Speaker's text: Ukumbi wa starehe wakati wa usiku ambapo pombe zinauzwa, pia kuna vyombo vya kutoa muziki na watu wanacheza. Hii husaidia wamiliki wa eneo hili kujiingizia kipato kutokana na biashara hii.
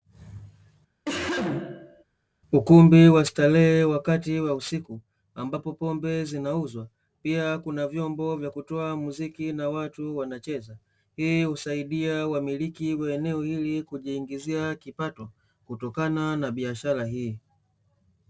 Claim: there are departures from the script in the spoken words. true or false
false